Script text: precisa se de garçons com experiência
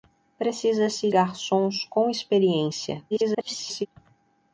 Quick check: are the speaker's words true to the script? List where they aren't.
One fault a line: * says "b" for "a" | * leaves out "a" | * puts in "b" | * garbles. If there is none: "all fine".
* leaves out "de"
* garbles